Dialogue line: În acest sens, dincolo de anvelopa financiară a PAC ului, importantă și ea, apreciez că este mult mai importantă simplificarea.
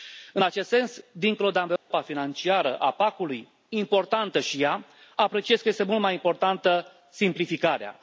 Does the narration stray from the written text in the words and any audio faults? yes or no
yes